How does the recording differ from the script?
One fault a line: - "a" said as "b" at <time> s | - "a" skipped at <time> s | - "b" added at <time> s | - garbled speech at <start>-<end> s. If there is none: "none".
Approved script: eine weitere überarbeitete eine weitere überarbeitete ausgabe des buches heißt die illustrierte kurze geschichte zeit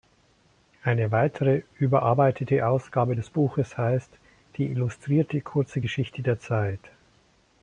- "eine weitere überarbeitete" skipped at 2.6 s
- "der" added at 6.2 s